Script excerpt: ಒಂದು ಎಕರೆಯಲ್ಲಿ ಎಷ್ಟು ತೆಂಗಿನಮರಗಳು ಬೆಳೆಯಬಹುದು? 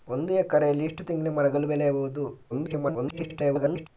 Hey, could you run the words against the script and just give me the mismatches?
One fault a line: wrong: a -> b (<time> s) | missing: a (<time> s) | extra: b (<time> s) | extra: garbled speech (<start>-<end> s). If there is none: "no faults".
extra: garbled speech (2.5-3.9 s)